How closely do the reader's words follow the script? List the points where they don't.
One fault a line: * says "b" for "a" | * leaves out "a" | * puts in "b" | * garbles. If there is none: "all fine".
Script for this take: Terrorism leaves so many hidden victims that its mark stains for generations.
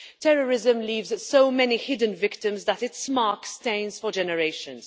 all fine